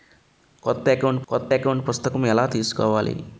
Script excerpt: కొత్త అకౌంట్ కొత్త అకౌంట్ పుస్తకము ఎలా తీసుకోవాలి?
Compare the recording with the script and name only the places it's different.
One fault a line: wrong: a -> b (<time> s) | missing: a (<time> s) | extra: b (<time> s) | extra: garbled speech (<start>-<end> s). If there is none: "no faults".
no faults